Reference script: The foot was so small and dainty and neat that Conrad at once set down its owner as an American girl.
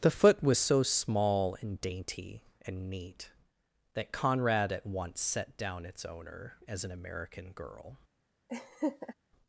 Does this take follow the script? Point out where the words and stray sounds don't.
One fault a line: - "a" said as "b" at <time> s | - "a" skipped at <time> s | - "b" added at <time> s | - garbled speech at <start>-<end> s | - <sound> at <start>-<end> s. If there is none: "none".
- laugh at 8.5-9.1 s